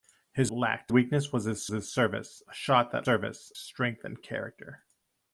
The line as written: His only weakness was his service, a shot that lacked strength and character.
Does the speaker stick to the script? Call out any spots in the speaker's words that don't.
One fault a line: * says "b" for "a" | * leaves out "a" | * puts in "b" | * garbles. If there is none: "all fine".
* says "lacked" for "only"
* puts in "his"
* says "service" for "lacked"